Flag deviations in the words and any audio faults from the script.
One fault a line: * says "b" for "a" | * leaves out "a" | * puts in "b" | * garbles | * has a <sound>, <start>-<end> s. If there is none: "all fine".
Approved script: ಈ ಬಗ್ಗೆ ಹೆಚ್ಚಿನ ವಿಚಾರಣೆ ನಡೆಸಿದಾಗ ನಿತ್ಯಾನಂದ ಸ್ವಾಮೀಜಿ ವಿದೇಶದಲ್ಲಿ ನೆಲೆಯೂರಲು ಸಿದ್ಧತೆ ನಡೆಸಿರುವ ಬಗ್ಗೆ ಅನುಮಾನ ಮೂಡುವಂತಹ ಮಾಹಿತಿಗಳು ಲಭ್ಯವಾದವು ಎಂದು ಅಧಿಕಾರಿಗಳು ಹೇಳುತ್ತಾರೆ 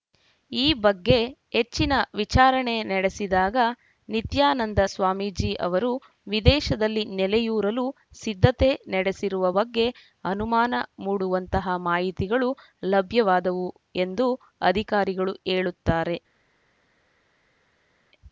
* puts in "ಅವರು"